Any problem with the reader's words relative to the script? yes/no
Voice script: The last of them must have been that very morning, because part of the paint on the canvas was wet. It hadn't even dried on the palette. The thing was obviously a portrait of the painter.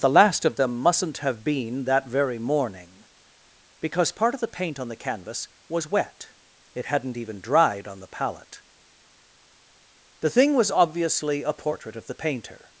yes